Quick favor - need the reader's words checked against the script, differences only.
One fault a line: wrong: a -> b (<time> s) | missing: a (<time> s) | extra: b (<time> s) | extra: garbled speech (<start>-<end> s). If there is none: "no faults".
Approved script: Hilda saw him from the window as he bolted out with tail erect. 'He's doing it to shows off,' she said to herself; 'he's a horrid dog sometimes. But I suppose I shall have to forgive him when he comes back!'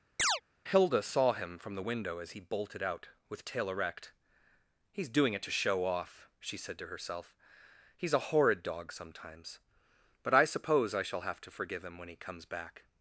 wrong: shows -> show (5.5 s)